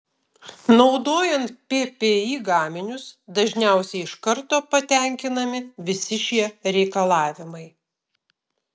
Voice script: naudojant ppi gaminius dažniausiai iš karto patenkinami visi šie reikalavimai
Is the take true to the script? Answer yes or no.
yes